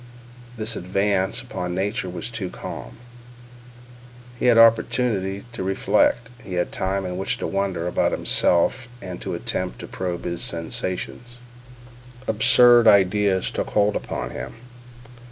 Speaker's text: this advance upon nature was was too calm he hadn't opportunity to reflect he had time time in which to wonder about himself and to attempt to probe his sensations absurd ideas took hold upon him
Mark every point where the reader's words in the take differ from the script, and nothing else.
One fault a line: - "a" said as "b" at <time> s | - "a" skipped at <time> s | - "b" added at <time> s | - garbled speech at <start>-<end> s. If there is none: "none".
- "was" skipped at 2.3 s
- "hadn't" said as "had" at 4.5 s
- "time" skipped at 7.0 s